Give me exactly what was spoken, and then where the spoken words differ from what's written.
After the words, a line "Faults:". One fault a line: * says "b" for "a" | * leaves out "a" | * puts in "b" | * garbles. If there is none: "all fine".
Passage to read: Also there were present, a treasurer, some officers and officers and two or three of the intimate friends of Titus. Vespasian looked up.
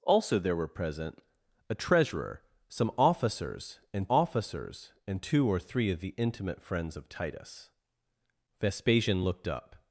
Also there were present, a treasurer, some officers and officers and two or three of the intimate friends of Titus. Vespasian looked up.
Faults:
all fine